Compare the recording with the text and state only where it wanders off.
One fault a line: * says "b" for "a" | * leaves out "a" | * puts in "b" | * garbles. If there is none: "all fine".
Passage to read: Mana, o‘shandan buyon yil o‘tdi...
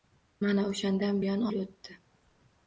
all fine